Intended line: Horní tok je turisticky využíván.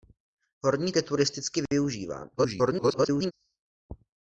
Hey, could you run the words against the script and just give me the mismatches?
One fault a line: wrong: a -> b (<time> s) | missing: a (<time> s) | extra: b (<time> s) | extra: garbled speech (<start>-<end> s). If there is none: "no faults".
missing: tok (0.9 s)
extra: garbled speech (2.4-3.3 s)